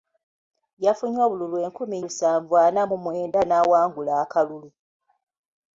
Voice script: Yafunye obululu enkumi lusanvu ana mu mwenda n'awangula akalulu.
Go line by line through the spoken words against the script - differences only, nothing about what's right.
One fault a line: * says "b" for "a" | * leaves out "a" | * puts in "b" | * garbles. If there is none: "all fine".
all fine